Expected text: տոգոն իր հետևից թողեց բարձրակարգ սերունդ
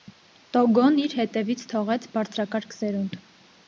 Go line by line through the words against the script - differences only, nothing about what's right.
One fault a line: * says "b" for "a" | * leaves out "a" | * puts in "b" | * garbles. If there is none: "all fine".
all fine